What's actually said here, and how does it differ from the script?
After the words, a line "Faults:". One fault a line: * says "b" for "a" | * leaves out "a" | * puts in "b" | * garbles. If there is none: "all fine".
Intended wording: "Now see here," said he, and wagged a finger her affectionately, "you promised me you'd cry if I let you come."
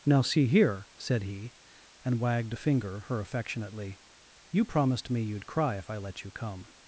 "Now see here," said he, and wagged a finger her affectionately, "you promised me you'd cry if I let you come."
Faults:
all fine